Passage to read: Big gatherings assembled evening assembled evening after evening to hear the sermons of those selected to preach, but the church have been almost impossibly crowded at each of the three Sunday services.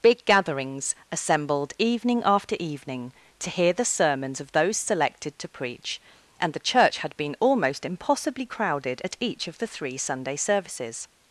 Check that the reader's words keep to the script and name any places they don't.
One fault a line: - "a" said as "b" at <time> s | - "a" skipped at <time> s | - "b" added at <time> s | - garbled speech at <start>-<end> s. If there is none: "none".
- "assembled evening" skipped at 2.2 s
- "but" said as "and" at 6.4 s
- "have" said as "had" at 7.0 s